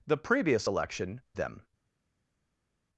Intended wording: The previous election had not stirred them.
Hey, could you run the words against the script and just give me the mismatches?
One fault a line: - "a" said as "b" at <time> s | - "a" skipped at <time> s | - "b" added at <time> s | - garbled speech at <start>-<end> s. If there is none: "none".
- "had not stirred" skipped at 1.2 s